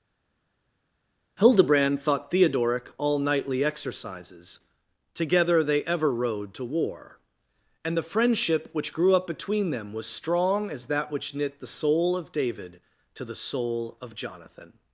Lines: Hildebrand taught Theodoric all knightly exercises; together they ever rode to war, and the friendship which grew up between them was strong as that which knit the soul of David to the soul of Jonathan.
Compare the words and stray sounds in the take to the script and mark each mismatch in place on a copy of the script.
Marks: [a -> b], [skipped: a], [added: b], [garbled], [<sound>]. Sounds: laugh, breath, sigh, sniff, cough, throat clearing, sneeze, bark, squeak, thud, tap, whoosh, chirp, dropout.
Hildebrand [taught -> thought] Theodoric all knightly exercises; together they ever rode to war, and the friendship which grew up between them was strong as that which knit the soul of David to the soul of Jonathan.